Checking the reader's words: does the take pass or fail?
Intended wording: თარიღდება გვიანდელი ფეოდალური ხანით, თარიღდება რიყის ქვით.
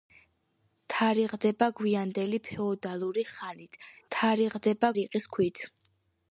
pass